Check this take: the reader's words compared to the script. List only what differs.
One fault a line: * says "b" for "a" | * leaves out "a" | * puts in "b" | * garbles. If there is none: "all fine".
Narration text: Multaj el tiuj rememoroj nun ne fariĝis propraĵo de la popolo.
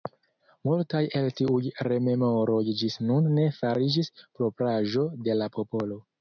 * puts in "ĝis"